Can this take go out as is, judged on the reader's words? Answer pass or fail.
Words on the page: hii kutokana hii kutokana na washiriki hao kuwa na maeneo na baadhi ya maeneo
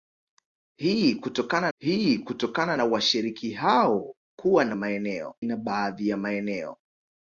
pass